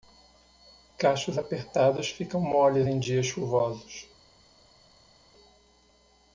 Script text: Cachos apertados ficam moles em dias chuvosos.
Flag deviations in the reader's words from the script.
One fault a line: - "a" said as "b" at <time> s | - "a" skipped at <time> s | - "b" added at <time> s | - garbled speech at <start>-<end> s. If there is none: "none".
none